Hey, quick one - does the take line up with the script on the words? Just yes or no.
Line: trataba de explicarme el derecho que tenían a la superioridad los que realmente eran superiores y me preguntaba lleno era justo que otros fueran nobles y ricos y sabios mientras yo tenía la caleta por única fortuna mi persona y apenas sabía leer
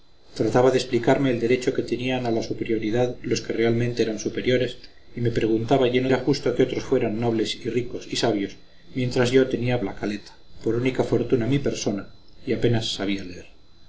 yes